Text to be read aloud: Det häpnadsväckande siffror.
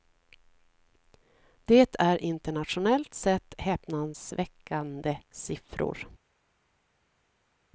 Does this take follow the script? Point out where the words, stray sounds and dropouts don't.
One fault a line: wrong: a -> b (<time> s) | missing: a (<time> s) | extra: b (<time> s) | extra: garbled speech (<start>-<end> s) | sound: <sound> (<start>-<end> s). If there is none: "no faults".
extra: är internationellt sett (2.0 s)